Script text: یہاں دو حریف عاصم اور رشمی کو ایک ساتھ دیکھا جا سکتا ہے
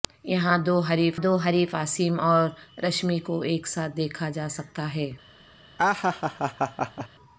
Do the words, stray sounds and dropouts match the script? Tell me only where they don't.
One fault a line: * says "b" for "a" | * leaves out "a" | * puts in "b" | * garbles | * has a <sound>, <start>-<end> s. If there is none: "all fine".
* puts in "دو حریف"
* has a laugh, 5.8-7.1 s